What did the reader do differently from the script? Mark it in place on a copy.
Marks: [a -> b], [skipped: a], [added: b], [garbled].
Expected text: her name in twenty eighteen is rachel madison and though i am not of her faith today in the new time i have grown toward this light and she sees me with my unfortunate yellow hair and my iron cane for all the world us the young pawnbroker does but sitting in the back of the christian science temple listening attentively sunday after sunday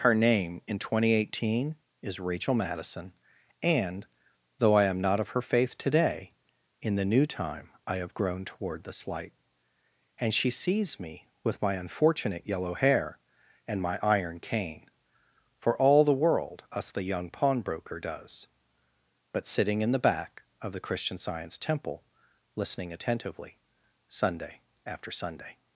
her name in twenty eighteen is rachel madison and though i am not of her faith today in the new time i have grown toward this light and she sees me with my unfortunate yellow hair and my iron cane for all the world us the young pawnbroker does but sitting in the back of the christian science temple listening attentively sunday after sunday